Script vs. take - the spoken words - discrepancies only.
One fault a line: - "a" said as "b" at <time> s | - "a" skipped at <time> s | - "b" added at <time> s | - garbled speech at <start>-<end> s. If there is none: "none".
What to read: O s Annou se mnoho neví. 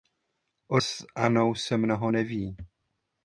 none